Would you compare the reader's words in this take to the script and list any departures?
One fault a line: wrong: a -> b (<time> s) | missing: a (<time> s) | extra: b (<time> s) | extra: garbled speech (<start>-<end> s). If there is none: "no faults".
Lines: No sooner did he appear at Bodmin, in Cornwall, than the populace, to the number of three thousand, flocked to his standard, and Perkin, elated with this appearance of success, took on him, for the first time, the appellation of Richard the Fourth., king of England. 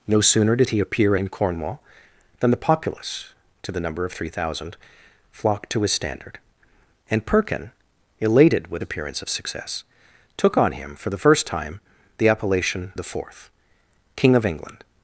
missing: at Bodmin (1.1 s)
missing: this (8.8 s)
missing: of Richard (12.9 s)